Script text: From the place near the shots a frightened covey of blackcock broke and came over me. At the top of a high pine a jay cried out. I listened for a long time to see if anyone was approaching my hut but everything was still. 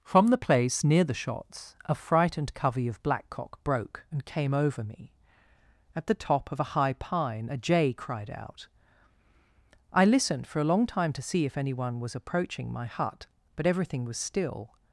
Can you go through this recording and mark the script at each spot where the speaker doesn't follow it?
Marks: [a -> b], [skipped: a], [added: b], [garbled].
From the place near the shots a frightened covey of blackcock broke and came over me. At the top of a high pine a jay cried out. I listened for a long time to see if anyone was approaching my hut but everything was still.